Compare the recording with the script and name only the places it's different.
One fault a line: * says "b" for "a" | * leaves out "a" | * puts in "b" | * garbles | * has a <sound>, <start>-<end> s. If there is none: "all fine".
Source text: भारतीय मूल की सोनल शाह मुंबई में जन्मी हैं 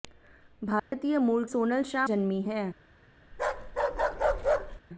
* has a dropout, 0.8-0.9 s
* leaves out "की"
* leaves out "मुंबई में"
* has a bark, 3.3-4.8 s